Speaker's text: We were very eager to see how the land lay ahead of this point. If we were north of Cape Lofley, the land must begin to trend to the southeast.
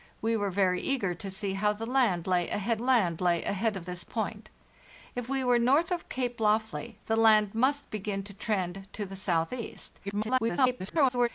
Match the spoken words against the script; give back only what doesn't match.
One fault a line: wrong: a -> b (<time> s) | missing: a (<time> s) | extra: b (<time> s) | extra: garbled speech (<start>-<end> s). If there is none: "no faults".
extra: land lay ahead (2.8 s)
extra: garbled speech (10.0-11.3 s)